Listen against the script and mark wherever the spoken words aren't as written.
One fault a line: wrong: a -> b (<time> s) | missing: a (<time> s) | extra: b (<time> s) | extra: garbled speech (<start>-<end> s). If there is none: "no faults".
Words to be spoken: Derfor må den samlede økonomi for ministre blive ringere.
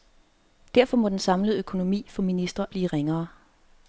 no faults